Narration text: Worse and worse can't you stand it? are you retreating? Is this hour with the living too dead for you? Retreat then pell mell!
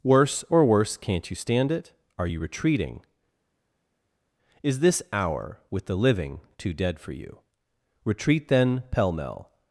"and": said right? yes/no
no